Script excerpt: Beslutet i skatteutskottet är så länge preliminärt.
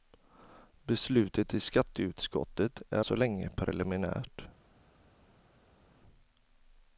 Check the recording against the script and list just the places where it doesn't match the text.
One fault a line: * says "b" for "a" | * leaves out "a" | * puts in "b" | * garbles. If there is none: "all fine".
all fine